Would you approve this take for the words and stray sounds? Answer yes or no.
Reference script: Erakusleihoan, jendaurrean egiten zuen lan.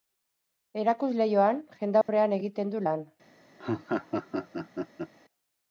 no